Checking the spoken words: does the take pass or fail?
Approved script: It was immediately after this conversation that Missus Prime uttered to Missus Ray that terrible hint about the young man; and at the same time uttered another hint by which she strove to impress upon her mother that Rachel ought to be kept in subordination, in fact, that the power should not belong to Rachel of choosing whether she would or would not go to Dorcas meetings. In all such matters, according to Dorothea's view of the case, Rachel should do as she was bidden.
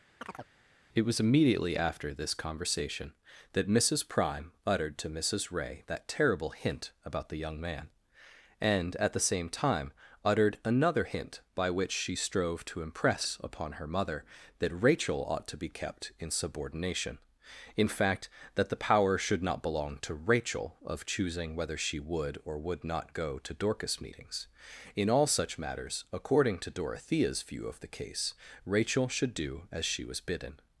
pass